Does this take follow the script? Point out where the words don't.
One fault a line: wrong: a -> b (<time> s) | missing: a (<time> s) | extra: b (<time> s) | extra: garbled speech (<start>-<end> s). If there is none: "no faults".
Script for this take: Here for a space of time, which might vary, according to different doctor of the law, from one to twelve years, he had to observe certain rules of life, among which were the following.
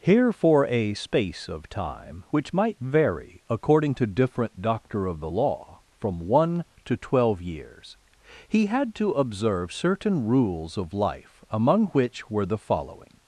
no faults